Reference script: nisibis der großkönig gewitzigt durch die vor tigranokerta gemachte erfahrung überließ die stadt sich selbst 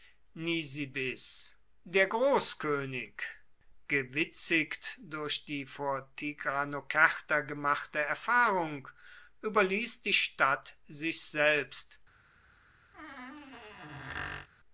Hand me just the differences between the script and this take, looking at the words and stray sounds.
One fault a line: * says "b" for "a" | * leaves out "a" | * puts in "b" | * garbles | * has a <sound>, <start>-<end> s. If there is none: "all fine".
* has a squeak, 12.9-14.5 s